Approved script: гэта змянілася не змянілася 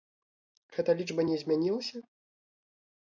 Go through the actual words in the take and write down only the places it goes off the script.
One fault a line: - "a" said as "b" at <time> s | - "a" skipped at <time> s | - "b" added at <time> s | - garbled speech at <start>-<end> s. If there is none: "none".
- "змянілася" said as "лічба" at 1.0 s